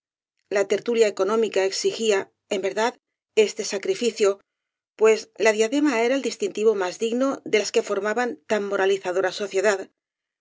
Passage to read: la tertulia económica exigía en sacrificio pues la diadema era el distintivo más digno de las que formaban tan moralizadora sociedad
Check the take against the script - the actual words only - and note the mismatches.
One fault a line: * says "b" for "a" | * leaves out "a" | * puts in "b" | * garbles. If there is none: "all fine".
* puts in "verdad este"